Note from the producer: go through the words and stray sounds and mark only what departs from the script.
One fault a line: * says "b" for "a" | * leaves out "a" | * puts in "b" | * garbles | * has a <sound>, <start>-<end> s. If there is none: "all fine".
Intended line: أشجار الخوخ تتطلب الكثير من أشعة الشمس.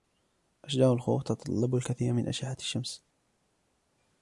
all fine